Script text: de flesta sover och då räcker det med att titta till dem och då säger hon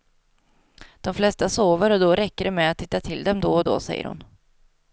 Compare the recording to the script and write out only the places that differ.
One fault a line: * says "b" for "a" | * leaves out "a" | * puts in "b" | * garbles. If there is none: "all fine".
* puts in "då"